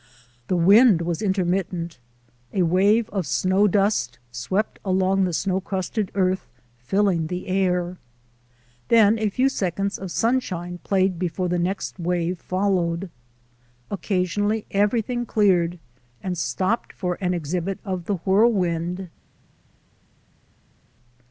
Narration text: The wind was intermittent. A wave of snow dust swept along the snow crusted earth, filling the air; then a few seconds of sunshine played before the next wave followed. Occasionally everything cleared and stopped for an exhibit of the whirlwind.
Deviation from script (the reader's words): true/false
false